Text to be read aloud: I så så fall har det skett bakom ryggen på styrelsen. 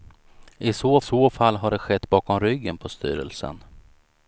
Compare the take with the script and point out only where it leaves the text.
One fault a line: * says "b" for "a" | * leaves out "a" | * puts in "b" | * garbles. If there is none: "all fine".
all fine